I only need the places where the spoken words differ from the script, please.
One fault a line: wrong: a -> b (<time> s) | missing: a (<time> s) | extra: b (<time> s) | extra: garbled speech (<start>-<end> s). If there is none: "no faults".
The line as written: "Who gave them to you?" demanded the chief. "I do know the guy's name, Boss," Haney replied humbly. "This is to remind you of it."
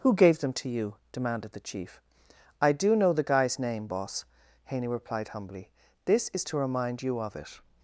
no faults